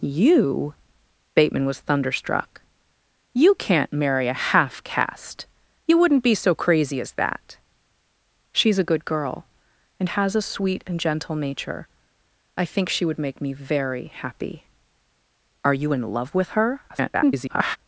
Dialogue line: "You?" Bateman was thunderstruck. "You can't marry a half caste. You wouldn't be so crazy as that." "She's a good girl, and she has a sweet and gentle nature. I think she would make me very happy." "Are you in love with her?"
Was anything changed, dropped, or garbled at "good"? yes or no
no